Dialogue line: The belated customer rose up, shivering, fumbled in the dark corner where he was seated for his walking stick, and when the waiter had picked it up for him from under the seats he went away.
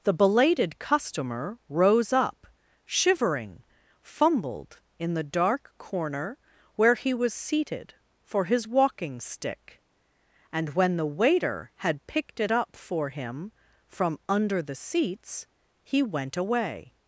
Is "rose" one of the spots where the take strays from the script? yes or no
no